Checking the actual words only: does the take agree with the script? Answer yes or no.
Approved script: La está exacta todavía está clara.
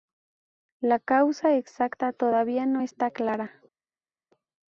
no